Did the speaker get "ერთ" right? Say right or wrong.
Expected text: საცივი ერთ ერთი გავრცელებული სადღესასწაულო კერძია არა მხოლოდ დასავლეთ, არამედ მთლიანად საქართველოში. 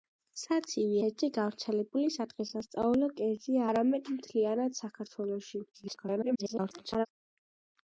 wrong